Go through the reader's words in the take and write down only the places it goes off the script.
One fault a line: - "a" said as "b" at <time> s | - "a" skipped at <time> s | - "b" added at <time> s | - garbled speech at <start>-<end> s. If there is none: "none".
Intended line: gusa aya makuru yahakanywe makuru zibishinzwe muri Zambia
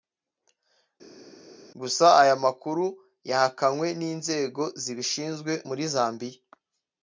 - "makuru" said as "n'inzego" at 4.0 s